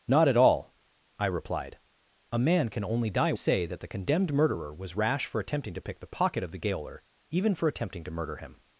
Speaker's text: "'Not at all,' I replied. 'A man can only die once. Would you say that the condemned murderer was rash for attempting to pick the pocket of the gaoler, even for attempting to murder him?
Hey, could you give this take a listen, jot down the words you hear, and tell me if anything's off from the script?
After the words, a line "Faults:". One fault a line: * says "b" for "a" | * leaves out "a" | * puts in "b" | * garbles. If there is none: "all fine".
"'Not at all,' I replied. 'A man can only die say that the condemned murderer was rash for attempting to pick the pocket of the gaoler, even for attempting to murder him?
Faults:
* leaves out "once Would you"